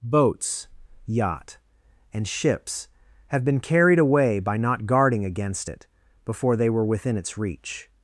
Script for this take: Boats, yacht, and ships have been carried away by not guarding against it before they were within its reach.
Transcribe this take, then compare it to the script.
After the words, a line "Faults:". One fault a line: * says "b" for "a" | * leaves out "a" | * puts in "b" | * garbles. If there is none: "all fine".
Boats, yacht, and ships have been carried away by not guarding against it before they were within its reach.
Faults:
all fine